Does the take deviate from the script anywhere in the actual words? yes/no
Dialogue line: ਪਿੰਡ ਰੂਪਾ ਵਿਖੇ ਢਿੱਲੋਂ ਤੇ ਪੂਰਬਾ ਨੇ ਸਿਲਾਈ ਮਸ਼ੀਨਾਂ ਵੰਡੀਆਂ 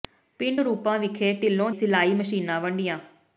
yes